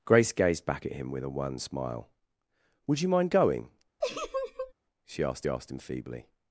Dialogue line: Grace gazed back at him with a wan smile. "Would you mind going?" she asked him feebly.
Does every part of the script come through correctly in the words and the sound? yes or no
no